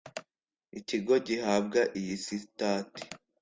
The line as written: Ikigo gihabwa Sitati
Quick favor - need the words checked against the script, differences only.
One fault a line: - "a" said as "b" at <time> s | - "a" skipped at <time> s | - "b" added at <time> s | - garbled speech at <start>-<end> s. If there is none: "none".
- "iyi" added at 2.0 s